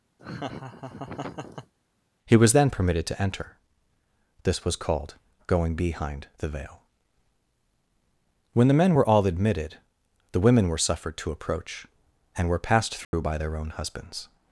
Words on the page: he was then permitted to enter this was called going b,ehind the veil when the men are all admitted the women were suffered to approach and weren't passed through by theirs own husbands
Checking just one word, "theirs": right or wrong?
wrong